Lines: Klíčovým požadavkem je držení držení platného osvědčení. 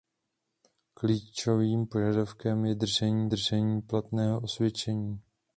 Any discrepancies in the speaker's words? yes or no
no